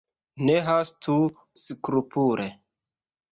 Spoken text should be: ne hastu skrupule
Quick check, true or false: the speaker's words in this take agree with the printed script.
true